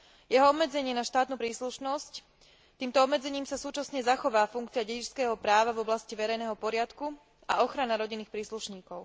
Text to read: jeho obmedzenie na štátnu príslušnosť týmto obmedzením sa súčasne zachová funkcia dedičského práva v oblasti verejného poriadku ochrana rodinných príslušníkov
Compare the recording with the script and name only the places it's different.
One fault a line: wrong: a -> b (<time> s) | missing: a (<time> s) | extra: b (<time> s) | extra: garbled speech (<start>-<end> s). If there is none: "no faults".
extra: a (7.4 s)